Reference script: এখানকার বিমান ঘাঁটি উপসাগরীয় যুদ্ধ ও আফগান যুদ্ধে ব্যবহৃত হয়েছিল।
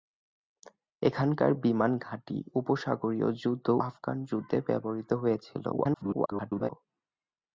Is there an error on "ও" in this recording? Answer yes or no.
yes